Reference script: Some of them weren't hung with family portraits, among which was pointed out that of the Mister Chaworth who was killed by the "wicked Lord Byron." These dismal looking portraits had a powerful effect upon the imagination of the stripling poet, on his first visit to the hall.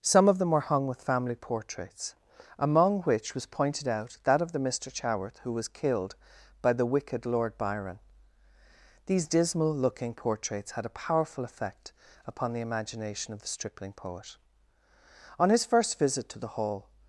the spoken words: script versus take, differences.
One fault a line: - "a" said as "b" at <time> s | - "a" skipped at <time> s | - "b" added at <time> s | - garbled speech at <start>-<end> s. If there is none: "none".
- "weren't" said as "were" at 0.5 s